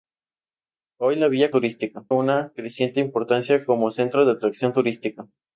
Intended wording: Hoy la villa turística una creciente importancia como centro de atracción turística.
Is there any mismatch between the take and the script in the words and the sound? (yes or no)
no